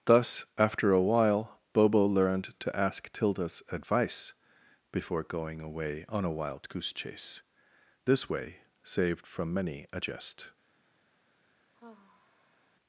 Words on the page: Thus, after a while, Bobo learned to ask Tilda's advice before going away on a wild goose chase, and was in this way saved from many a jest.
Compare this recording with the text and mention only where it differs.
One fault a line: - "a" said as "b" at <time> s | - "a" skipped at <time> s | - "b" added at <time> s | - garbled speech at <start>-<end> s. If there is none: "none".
- "and was in" skipped at 7.4 s